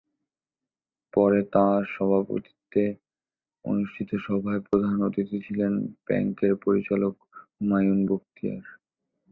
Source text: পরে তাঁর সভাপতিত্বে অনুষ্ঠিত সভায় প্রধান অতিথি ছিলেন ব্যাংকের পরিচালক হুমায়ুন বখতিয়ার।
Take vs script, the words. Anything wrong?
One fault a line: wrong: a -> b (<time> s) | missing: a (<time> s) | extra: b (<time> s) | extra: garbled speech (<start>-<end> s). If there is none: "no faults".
no faults